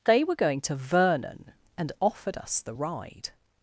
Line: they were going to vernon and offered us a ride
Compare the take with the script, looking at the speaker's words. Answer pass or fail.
fail